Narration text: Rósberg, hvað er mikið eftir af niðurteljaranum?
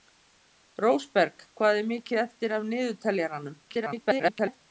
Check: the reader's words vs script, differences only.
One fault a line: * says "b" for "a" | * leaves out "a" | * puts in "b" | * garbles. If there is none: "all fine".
* garbles